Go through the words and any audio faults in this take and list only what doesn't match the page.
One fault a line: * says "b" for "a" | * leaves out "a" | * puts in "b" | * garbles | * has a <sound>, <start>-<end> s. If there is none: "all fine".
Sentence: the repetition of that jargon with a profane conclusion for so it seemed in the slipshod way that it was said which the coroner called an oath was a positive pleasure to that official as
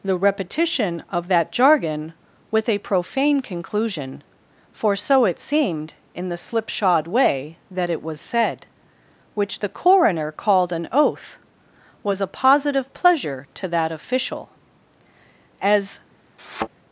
* has a thud, 16.4-16.7 s